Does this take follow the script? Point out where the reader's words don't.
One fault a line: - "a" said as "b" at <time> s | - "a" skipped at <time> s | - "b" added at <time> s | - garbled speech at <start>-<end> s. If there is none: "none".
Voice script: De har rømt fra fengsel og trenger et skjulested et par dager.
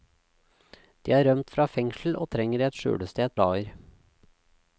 - "par" skipped at 3.4 s